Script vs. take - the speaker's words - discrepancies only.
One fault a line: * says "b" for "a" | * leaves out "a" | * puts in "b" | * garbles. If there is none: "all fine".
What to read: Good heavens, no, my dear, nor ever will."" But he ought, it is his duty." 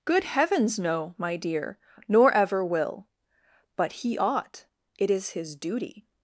all fine